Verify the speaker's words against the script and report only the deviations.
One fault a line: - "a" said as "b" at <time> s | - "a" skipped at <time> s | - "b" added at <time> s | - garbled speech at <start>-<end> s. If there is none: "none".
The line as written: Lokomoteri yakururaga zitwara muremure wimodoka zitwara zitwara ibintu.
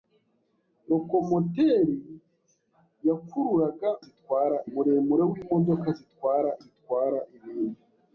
none